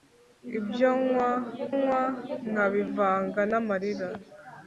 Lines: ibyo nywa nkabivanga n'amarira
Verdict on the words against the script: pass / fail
fail